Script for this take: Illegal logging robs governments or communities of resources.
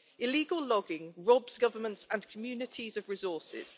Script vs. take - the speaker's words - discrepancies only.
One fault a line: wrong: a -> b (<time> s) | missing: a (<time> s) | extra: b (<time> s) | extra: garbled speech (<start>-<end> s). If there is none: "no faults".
wrong: or -> and (2.1 s)